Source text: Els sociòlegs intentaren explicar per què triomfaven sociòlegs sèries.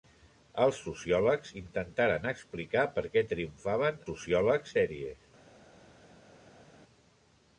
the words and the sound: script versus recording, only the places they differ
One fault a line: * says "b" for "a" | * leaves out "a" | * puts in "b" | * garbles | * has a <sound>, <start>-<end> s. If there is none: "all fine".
all fine